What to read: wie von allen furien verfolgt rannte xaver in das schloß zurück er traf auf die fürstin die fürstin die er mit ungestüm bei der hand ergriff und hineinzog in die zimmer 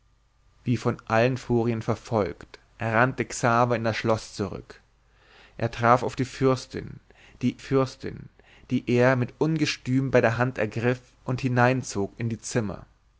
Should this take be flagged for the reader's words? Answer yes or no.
no